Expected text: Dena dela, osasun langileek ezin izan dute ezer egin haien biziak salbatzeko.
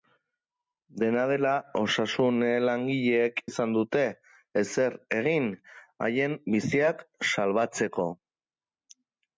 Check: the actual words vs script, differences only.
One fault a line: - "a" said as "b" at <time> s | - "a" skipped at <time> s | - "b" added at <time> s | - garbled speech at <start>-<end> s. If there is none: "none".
- "ezin" skipped at 3.4 s